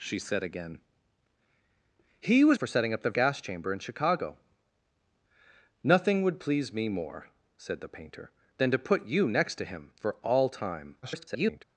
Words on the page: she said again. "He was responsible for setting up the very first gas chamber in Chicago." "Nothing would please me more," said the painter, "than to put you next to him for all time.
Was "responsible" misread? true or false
true